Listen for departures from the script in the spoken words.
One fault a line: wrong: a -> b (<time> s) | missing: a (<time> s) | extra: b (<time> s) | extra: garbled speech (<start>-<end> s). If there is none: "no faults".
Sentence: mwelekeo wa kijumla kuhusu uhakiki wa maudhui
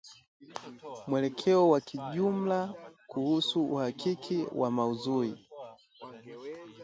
no faults